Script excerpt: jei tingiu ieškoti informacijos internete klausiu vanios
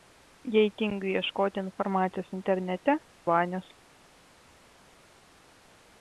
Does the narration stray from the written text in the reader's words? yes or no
yes